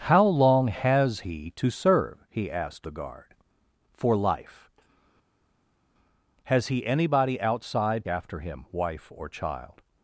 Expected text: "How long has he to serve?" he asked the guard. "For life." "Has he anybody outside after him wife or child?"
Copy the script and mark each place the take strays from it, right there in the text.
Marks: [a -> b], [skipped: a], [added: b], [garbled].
"How long has he to serve?" he asked the guard. "For life." "Has he anybody outside after him wife or child?"